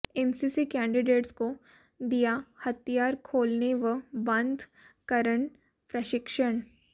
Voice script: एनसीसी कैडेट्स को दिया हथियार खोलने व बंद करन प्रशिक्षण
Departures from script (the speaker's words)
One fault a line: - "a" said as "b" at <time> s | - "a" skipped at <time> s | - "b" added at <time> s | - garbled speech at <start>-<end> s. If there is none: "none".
none